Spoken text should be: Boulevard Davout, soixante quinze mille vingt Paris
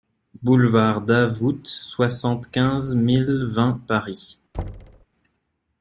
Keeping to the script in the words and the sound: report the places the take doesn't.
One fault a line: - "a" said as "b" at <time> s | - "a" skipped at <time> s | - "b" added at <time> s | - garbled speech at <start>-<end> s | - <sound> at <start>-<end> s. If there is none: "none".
- thud at 4.5-5.1 s